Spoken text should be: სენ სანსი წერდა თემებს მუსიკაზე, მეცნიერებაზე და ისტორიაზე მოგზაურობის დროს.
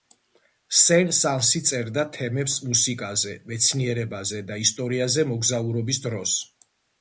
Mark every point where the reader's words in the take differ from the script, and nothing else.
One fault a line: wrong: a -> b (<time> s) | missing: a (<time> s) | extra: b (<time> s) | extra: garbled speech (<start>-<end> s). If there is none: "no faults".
no faults